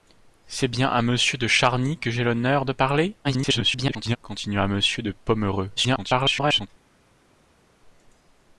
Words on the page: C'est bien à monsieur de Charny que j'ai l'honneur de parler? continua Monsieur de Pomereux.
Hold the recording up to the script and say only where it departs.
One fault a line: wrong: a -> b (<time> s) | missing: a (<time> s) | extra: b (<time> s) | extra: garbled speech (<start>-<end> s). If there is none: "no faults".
extra: garbled speech (3.2-4.2 s)
extra: garbled speech (5.8-6.7 s)